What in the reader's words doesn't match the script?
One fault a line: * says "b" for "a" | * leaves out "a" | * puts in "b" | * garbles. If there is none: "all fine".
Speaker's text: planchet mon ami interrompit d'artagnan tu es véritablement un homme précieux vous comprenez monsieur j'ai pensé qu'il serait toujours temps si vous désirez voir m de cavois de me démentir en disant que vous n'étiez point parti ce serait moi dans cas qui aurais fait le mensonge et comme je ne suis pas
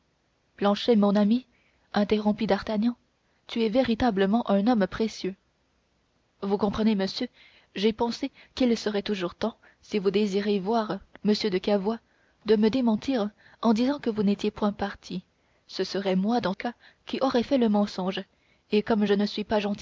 all fine